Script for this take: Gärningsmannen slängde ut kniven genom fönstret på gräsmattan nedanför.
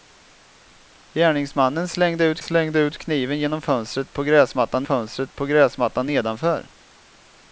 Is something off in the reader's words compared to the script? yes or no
yes